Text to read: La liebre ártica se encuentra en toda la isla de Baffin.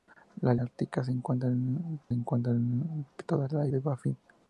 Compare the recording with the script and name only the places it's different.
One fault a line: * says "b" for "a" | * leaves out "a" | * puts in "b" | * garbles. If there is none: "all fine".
* leaves out "liebre"
* puts in "encuentra en"
* leaves out "isla"